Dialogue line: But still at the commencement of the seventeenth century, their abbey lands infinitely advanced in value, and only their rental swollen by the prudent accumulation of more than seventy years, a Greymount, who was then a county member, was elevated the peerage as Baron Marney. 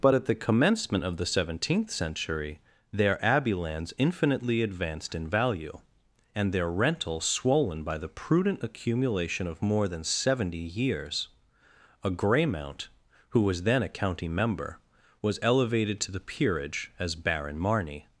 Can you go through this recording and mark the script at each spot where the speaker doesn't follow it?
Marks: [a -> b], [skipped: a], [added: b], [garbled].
But [skipped: still] at the commencement of the seventeenth century, their abbey lands infinitely advanced in value, and [skipped: only] their rental swollen by the prudent accumulation of more than seventy years, a Greymount, who was then a county member, was elevated [added: to] the peerage as Baron Marney.